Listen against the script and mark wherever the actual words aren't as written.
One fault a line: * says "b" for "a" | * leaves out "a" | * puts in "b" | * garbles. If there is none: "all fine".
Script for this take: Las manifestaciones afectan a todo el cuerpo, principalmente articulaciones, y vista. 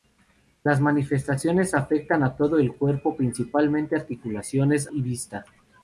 all fine